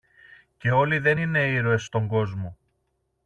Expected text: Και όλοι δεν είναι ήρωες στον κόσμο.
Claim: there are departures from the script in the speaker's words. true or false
false